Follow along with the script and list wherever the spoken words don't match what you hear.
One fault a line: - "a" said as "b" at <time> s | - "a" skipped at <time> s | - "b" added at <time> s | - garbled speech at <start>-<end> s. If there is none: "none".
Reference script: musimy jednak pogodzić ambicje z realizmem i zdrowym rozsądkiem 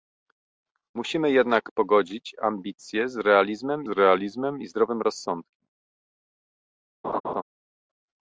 - "realizmem" added at 3.9 s